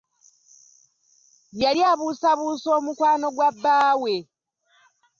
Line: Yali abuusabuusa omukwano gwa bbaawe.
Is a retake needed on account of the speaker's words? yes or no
no